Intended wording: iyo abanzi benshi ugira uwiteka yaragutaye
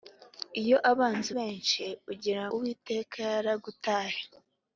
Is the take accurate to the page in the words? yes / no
yes